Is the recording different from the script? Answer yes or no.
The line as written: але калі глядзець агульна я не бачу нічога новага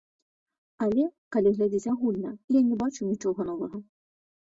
no